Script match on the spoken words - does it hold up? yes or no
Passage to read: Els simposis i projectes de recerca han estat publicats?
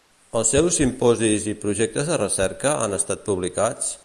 no